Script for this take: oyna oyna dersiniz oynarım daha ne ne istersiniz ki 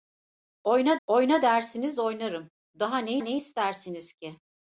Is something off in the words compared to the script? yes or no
no